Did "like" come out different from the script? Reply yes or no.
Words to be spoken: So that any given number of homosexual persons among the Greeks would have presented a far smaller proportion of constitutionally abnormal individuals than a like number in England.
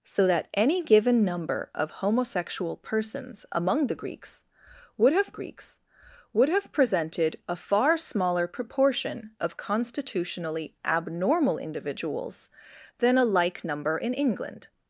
no